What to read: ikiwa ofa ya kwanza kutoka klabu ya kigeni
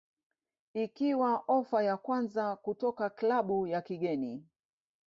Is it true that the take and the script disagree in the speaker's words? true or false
false